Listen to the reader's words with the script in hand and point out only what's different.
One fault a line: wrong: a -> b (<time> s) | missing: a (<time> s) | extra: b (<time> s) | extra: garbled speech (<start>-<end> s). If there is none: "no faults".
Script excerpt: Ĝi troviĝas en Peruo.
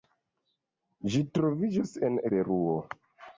no faults